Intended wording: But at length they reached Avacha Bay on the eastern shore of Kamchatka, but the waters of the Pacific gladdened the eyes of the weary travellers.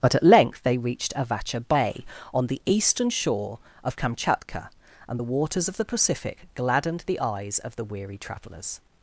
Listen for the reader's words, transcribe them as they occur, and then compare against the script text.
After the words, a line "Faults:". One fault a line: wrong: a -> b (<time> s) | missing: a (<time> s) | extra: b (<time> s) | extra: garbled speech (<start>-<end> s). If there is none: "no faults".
But at length they reached Avacha Bay on the eastern shore of Kamchatka, and the waters of the Pacific gladdened the eyes of the weary travellers.
Faults:
wrong: but -> and (5.1 s)